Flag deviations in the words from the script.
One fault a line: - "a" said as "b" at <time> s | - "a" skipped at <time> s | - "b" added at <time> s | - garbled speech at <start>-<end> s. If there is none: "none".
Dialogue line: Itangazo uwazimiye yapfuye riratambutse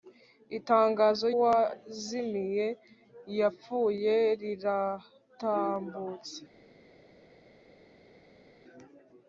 none